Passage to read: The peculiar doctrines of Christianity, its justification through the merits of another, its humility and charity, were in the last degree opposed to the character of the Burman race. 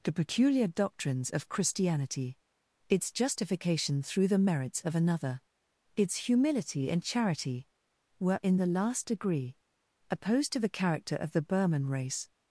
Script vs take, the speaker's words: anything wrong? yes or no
no